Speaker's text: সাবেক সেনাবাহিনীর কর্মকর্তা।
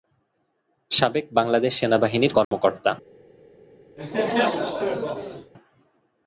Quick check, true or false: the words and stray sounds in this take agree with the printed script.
false